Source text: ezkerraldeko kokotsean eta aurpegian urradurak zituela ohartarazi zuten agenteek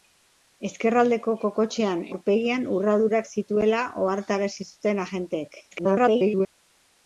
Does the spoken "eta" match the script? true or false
false